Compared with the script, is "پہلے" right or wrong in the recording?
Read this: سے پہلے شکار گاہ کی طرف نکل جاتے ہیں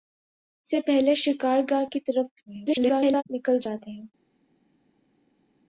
right